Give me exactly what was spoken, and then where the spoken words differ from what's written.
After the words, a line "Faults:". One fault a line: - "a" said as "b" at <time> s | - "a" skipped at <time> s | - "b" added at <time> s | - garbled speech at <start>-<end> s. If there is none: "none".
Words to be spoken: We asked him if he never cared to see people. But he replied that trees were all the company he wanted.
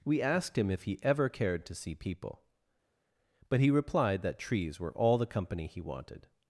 We asked him if he ever cared to see people. But he replied that trees were all the company he wanted.
Faults:
- "never" said as "ever" at 1.0 s